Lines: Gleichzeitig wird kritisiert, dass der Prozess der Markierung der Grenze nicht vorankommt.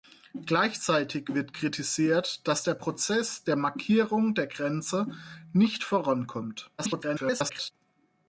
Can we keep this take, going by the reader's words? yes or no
no